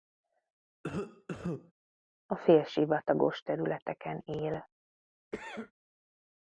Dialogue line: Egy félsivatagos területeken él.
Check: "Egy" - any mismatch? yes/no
yes